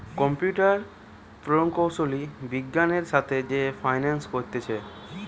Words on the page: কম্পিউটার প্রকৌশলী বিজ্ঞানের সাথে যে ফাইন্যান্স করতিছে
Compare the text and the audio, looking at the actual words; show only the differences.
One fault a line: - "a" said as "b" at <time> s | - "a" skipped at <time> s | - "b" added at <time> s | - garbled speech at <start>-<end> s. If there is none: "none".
none